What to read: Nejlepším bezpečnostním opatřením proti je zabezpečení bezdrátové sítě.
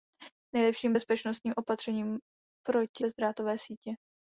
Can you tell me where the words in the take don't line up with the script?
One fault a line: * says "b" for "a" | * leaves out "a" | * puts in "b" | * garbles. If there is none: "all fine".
* leaves out "je zabezpečení"